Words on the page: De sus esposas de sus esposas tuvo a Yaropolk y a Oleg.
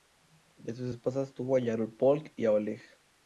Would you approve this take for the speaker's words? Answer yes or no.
no